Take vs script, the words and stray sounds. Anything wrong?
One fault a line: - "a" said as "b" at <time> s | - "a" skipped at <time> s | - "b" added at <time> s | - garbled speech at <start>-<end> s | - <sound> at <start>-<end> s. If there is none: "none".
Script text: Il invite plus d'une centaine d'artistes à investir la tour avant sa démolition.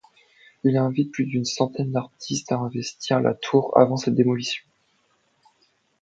none